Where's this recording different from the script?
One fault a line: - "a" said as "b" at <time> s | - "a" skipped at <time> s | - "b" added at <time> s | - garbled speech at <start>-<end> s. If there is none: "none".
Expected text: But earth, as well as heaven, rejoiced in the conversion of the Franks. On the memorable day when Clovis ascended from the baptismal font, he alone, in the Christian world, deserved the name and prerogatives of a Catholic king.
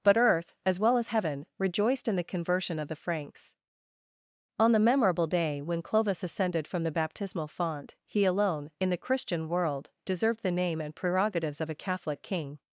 none